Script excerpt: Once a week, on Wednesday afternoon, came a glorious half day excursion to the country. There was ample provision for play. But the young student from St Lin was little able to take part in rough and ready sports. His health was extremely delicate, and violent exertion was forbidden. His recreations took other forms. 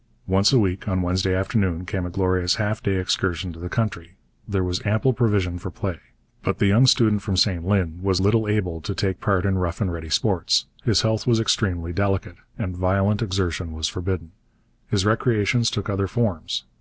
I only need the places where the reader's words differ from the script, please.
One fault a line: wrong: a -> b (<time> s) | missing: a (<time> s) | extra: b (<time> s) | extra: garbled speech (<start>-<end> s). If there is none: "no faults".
no faults